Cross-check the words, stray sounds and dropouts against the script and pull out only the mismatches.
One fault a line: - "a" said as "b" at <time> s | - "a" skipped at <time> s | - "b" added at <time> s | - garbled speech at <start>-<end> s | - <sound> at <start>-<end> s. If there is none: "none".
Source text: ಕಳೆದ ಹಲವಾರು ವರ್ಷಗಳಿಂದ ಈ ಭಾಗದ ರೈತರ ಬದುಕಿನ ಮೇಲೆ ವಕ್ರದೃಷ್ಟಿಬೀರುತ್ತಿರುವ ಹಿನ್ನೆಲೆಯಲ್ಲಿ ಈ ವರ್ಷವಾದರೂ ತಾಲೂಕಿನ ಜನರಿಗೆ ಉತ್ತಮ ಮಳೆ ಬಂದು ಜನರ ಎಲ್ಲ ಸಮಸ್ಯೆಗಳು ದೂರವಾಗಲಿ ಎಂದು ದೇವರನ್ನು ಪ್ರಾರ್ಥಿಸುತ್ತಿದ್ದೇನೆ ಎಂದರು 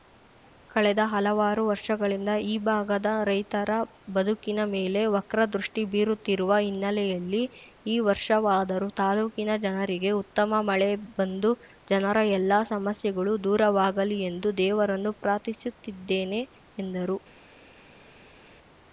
none